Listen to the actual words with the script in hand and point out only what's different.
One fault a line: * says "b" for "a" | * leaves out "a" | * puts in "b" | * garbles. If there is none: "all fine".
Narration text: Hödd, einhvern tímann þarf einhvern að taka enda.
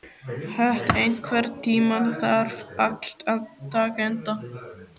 * says "allt" for "einhvern"